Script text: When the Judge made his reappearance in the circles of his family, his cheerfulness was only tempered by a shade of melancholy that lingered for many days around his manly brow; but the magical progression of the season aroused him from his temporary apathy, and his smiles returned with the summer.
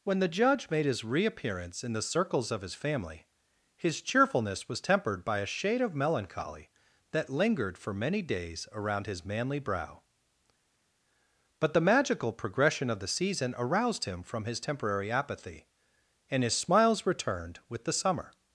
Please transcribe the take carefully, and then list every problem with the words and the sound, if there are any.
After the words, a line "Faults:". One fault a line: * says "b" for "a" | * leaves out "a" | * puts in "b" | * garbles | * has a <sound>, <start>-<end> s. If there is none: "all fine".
When the Judge made his reappearance in the circles of his family, his cheerfulness was tempered by a shade of melancholy that lingered for many days around his manly brow; but the magical progression of the season aroused him from his temporary apathy, and his smiles returned with the summer.
Faults:
* leaves out "only"